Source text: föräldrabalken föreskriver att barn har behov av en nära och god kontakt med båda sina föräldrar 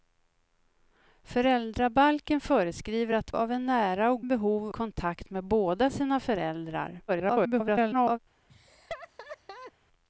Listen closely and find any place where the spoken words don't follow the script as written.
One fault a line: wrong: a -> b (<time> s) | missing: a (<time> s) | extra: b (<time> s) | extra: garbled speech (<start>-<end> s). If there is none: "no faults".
missing: barn har behov (3.3 s)
wrong: god -> behov (4.2 s)
extra: garbled speech (7.1-8.2 s)